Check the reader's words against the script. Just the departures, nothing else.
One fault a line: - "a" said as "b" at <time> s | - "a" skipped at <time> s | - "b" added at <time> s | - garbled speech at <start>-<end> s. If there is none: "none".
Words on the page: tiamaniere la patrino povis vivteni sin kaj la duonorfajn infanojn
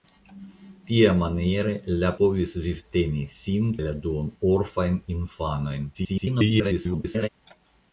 - "patrino" skipped at 2.1 s
- "kaj" skipped at 3.7 s
- garbled speech at 5.9-7.3 s